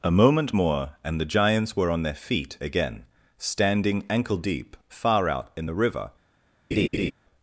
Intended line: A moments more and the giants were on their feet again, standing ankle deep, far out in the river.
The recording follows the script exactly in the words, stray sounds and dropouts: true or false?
false